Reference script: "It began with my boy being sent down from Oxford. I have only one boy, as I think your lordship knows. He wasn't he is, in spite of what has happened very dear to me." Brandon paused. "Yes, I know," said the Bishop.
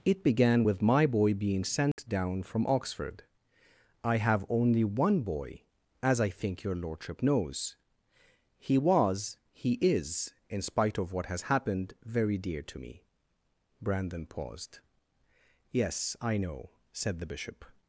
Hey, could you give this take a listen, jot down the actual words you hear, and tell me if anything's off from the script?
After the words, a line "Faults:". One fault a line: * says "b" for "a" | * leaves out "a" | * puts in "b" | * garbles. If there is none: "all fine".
"It began with my boy being sent down from Oxford. I have only one boy, as I think your lordship knows. He was he is, in spite of what has happened very dear to me." Brandon paused. "Yes, I know," said the Bishop.
Faults:
* says "was" for "wasn't"